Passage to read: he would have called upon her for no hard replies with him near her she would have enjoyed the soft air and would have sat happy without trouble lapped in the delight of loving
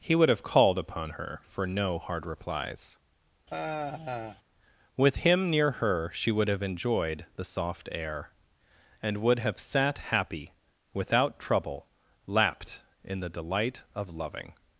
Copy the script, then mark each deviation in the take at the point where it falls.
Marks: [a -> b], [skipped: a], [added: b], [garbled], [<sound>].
he would have called upon her for no hard replies [sigh] with him near her she would have enjoyed the soft air and would have sat happy without trouble lapped in the delight of loving